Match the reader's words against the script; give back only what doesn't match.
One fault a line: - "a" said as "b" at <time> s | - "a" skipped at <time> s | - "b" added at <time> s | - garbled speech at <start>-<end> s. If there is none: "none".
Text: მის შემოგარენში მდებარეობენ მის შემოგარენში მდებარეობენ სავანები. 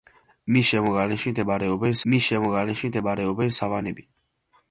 none